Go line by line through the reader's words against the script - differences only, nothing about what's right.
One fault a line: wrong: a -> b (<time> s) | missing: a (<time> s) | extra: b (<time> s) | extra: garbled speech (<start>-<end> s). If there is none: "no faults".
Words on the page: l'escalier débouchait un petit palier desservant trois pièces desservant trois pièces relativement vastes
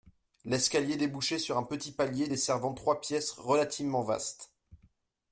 extra: sur (1.4 s)
missing: desservant trois pièces (3.3 s)